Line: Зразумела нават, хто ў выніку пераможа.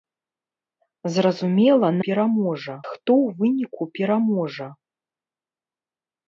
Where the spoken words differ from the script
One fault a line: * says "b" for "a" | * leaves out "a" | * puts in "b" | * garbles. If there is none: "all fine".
* says "пераможа" for "нават"